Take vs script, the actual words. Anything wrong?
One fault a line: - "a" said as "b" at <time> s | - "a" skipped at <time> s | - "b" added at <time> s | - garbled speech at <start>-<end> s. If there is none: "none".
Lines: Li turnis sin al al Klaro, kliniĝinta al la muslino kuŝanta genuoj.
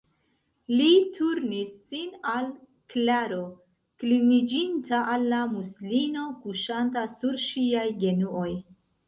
- "al" skipped at 2.5 s
- "sur ŝiaj" added at 7.2 s